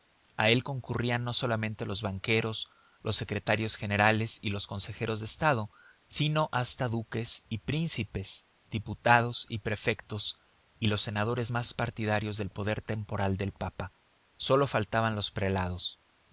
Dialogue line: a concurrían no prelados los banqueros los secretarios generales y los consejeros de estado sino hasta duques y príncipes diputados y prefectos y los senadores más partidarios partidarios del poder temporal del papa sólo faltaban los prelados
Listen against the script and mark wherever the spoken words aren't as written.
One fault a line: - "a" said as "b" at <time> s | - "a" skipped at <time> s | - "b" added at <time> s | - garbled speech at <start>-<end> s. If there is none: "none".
- "él" added at 0.5 s
- "prelados" said as "solamente" at 1.3 s
- "partidarios" skipped at 12.4 s